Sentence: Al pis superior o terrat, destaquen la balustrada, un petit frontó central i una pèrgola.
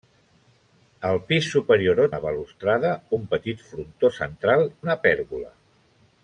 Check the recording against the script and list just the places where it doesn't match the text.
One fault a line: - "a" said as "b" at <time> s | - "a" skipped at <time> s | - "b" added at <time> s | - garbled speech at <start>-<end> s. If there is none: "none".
- "terrat destaquen" skipped at 2.1 s
- "i" skipped at 4.7 s